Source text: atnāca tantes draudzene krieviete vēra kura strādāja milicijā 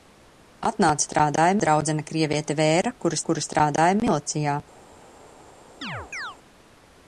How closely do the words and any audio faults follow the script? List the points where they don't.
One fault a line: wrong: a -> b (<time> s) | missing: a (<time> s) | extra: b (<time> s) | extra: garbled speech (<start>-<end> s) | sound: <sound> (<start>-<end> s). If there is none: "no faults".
wrong: tantes -> strādāja (1.1 s)
extra: kura (3.3 s)
sound: chirp (5.8-6.4 s)